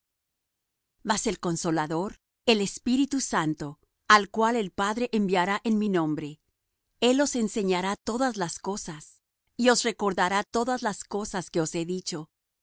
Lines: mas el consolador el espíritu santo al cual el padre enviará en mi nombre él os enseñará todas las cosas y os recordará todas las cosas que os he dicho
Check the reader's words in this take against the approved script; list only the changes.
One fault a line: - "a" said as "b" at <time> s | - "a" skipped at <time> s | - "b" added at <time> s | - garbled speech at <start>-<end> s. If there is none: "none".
none